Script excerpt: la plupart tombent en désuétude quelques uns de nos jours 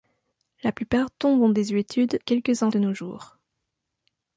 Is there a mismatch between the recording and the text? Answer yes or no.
no